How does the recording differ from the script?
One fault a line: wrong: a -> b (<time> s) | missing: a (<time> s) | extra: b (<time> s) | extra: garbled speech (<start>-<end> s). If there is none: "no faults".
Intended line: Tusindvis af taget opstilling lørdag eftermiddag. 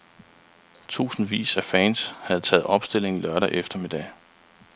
extra: fans havde (1.6 s)